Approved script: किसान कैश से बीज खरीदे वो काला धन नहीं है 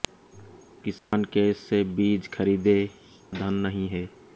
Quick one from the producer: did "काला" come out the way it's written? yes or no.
no